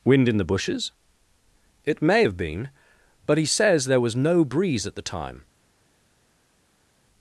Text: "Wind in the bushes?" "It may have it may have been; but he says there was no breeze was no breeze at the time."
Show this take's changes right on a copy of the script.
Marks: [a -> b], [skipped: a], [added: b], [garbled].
"Wind in the bushes?" "It may have [skipped: it may have] been; but he says there was no breeze [skipped: was no breeze] at the time."